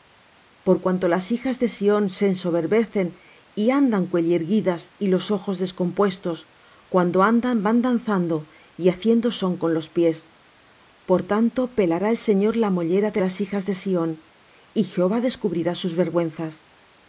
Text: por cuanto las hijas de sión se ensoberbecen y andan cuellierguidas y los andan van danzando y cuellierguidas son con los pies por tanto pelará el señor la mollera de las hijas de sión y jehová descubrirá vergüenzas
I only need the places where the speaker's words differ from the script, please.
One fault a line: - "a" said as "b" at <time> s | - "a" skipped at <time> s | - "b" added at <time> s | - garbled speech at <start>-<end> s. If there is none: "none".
- "ojos descompuestos cuando" added at 5.3 s
- "cuellierguidas" said as "haciendo" at 8.9 s
- "sus" added at 15.8 s